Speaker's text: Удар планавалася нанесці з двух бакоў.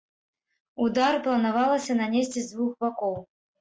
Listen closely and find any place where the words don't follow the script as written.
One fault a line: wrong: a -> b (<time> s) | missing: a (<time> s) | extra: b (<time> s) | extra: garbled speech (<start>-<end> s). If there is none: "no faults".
no faults